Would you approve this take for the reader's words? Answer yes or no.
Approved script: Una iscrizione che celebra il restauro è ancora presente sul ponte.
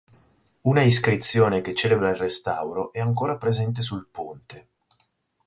yes